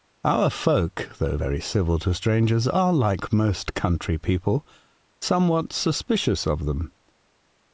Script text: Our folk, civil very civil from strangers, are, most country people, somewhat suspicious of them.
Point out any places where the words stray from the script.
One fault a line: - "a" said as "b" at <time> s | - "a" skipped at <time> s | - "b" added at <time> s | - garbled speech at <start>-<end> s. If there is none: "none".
- "civil" said as "though" at 1.2 s
- "from" said as "to" at 2.0 s
- "like" added at 2.9 s